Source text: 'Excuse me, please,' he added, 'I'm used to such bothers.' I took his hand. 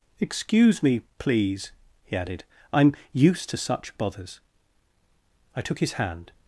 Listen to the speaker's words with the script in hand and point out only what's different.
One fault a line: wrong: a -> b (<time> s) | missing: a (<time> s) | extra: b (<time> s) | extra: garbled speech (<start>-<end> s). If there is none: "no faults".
no faults